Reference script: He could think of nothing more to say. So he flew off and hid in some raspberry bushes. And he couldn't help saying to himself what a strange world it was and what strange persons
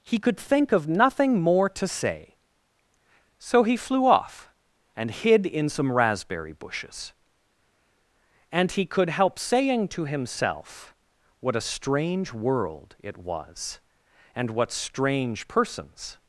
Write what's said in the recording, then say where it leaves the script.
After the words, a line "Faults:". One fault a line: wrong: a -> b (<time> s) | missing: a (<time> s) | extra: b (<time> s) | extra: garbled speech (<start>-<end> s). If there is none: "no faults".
He could think of nothing more to say. So he flew off and hid in some raspberry bushes. And he could help saying to himself what a strange world it was and what strange persons
Faults:
wrong: couldn't -> could (8.8 s)